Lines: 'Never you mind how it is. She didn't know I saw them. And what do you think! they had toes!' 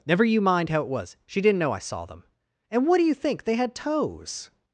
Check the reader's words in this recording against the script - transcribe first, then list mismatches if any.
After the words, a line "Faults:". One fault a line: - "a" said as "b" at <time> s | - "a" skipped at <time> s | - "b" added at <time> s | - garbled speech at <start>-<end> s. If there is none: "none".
'Never you mind how it was. She didn't know I saw them. And what do you think! they had toes!'
Faults:
- "is" said as "was" at 0.9 s